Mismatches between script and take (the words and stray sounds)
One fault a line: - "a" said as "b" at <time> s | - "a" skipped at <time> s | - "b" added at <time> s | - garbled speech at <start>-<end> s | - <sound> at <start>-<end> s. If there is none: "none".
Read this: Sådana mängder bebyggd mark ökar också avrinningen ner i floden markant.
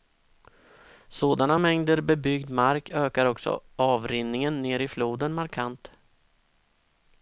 none